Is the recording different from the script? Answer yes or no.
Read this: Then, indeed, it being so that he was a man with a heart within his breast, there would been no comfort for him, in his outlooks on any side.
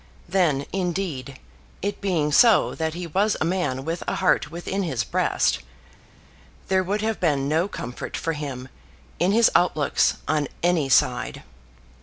yes